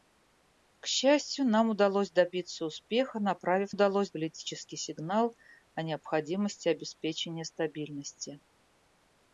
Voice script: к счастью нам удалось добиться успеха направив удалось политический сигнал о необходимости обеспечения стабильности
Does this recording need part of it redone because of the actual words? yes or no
no